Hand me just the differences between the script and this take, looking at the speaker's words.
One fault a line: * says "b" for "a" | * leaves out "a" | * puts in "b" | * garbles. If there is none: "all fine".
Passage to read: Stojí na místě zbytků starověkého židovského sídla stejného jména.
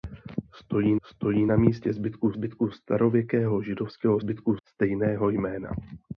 * puts in "stojí"
* puts in "zbytků"
* says "zbytků" for "sídla"